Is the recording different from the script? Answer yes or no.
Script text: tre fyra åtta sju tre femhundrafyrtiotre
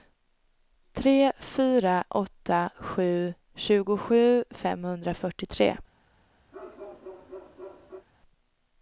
yes